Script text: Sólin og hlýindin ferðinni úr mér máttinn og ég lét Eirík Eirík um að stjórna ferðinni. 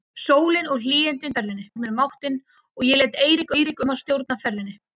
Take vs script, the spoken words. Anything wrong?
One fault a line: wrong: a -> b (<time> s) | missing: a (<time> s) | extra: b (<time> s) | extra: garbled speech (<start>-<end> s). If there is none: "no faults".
no faults